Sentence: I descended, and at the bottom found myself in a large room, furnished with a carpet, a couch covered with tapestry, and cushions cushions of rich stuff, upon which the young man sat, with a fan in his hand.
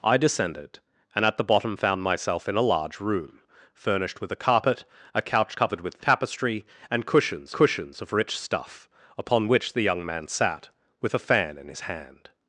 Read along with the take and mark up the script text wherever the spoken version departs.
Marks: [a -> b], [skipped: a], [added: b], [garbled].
I descended, and at the bottom found myself in a large room, furnished with a carpet, a couch covered with tapestry, and cushions cushions of rich stuff, upon which the young man sat, with a fan in his hand.